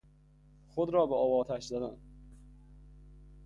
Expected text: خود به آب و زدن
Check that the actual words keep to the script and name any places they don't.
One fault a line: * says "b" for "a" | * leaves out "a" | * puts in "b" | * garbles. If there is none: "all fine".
* puts in "را"
* puts in "آتش"